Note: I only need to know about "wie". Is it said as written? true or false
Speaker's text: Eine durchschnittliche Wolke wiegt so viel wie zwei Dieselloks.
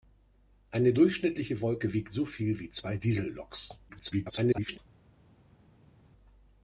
true